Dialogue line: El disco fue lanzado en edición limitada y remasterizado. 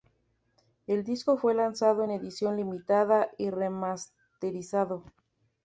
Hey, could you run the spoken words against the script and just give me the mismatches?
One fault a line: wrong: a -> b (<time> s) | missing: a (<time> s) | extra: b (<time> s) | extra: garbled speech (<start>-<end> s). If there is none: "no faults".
no faults